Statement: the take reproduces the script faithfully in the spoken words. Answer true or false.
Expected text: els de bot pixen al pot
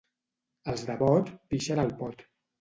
true